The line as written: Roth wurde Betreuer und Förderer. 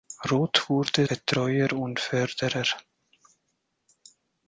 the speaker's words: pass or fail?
pass